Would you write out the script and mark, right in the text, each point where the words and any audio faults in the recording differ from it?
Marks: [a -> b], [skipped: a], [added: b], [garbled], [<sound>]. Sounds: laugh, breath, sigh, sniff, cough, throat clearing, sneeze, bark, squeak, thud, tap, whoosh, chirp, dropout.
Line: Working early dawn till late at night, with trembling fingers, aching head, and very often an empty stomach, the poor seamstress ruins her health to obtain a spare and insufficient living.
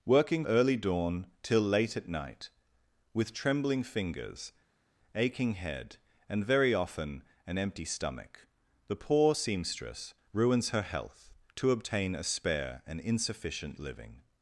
Working early dawn till late at night, with trembling fingers, aching head, and very often an empty stomach, the poor seamstress ruins her health to obtain a spare and insufficient living.